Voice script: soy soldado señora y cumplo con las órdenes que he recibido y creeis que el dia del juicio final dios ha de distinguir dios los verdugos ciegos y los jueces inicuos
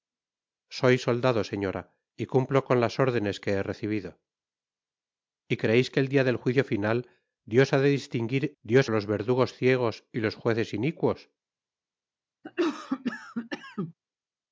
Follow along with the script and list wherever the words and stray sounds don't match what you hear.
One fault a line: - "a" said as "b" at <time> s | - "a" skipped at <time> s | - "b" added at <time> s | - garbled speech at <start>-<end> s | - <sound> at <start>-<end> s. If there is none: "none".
- cough at 12.4-13.9 s